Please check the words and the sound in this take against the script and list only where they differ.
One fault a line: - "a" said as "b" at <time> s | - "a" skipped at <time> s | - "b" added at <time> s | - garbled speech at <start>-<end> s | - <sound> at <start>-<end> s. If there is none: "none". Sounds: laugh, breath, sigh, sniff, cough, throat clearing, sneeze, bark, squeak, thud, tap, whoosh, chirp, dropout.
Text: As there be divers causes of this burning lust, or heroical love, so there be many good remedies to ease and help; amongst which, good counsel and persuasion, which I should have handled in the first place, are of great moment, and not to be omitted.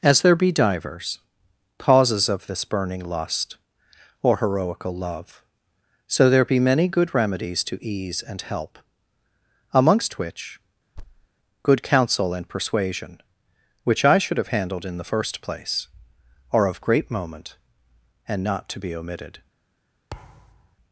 - thud at 11.0-11.3 s
- thud at 20.1-20.8 s